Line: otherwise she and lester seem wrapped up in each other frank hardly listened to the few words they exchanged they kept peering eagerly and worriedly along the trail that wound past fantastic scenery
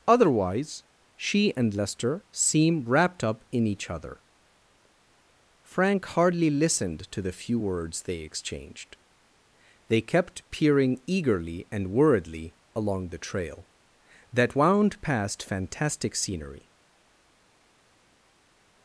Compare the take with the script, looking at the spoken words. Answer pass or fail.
pass